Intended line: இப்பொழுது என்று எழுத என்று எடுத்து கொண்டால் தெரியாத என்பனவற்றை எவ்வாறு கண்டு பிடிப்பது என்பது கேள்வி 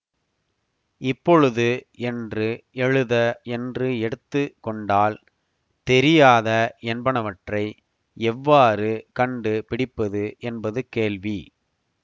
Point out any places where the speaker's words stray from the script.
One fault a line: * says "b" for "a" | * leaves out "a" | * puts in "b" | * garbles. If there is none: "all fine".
all fine